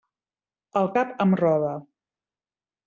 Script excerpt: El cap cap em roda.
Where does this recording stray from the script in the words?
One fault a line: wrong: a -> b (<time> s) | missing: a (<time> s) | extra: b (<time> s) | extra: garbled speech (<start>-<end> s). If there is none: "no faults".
missing: cap (1.1 s)